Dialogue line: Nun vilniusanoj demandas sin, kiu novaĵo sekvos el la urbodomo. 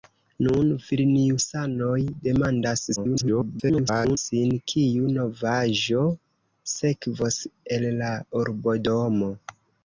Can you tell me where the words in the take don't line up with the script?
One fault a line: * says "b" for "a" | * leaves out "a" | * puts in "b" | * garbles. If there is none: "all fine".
* garbles